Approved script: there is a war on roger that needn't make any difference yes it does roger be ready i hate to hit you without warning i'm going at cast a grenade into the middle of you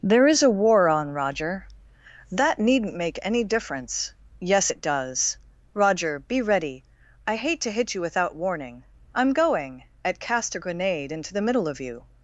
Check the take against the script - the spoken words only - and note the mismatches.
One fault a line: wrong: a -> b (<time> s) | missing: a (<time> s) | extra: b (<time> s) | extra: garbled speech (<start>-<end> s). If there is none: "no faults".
no faults